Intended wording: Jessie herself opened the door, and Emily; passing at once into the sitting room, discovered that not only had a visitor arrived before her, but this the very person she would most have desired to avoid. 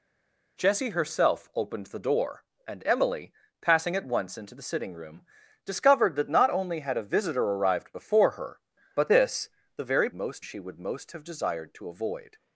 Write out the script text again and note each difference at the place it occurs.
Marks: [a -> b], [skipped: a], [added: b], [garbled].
Jessie herself opened the door, and Emily; passing at once into the sitting room, discovered that not only had a visitor arrived before her, but this the very [person -> most] she would most have desired to avoid.